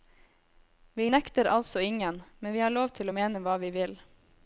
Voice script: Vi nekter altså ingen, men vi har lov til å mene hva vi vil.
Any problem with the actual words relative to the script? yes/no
no